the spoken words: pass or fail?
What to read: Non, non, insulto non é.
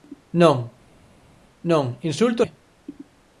fail